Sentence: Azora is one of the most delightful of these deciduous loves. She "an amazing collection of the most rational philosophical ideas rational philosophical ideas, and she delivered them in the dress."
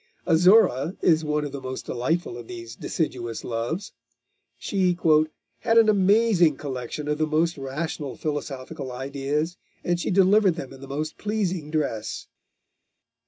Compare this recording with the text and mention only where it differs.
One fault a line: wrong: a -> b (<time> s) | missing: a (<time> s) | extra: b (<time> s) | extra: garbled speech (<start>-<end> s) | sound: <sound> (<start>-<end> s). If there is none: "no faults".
extra: had (5.6 s)
missing: rational philosophical ideas (9.6 s)
extra: most pleasing (10.9 s)